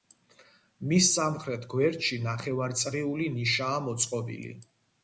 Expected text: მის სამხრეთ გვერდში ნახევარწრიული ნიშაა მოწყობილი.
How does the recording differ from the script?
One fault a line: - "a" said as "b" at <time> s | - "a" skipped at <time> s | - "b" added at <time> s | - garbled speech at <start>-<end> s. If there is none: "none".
none